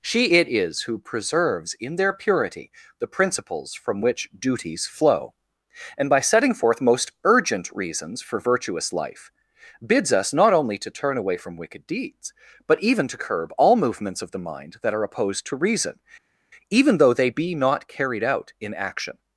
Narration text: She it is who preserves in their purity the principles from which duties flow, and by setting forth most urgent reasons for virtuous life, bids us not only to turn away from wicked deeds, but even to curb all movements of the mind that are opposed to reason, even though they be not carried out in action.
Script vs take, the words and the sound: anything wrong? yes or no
no